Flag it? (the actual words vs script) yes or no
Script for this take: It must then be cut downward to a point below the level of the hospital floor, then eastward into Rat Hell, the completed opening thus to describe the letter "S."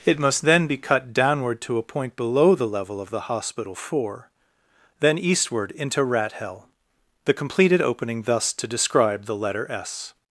yes